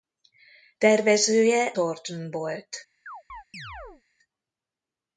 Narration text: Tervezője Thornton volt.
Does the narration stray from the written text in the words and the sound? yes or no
yes